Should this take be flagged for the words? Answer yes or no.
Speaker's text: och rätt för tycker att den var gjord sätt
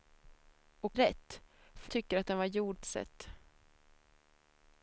no